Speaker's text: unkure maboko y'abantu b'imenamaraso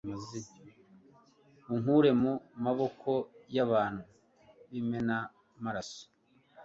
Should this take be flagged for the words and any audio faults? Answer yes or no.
yes